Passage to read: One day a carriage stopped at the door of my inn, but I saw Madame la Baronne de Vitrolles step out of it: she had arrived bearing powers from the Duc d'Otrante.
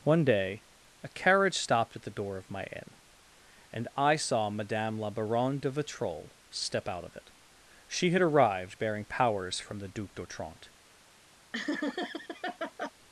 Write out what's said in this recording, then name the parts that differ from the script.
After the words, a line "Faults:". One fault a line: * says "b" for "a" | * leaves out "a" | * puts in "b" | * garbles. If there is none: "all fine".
One day a carriage stopped at the door of my inn, and I saw Madame la Baronne de Vitrolles step out of it: she had arrived bearing powers from the Duc d'Otrante.
Faults:
* says "and" for "but"